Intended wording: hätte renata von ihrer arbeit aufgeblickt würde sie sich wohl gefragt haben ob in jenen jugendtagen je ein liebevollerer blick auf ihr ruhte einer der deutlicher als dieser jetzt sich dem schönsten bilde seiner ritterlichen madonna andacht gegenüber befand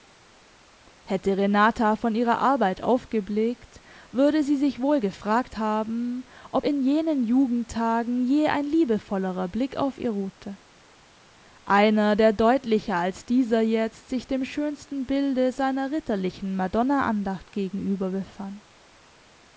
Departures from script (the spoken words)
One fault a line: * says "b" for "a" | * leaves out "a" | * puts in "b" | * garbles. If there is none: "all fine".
all fine